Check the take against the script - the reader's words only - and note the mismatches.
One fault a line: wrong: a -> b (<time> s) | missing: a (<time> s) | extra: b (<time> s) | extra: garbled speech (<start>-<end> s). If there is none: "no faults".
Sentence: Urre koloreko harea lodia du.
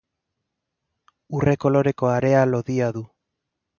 no faults